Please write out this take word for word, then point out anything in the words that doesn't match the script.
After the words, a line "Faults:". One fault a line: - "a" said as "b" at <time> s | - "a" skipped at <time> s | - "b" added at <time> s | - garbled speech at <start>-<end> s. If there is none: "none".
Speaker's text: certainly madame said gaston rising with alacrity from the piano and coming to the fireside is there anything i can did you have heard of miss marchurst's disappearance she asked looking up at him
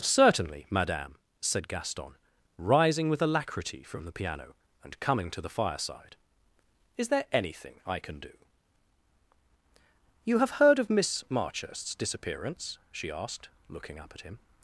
certainly madame said gaston rising with alacrity from the piano and coming to the fireside is there anything i can do you have heard of miss marchurst's disappearance she asked looking up at him
Faults:
- "did" said as "do" at 8.2 s